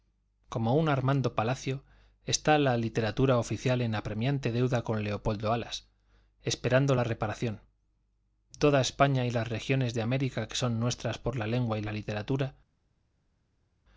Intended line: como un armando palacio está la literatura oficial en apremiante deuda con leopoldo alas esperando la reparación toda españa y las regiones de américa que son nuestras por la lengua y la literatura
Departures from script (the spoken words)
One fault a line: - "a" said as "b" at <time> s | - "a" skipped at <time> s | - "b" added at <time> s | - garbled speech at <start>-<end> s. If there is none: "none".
none